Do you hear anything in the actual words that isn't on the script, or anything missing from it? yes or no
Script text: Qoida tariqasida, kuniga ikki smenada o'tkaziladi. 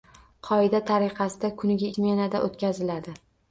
yes